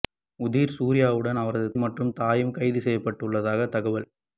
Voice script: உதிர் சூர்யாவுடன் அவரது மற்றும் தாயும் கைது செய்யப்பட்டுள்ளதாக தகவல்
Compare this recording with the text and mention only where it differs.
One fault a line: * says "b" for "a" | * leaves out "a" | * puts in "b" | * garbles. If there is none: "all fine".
all fine